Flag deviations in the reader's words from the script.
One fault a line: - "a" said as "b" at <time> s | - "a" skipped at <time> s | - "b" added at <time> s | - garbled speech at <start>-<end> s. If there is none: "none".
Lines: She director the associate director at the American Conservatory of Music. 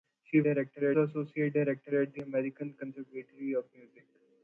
none